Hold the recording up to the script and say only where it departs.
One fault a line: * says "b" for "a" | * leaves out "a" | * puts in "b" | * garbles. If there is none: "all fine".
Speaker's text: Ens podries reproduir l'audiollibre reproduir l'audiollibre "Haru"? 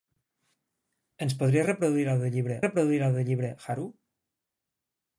all fine